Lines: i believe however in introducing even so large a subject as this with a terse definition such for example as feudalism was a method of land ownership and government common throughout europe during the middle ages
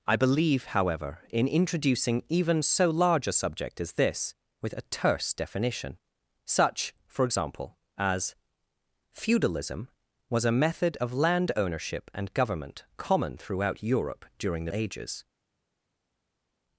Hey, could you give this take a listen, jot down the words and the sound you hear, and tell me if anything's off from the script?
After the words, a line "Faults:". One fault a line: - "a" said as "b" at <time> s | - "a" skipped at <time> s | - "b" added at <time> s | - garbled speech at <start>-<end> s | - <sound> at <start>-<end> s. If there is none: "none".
i believe however in introducing even so large a subject as this with a terse definition such for example as feudalism was a method of land ownership and government common throughout europe during the ages
Faults:
- "middle" skipped at 14.7 s